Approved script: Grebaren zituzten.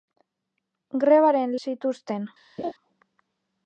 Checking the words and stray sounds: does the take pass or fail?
fail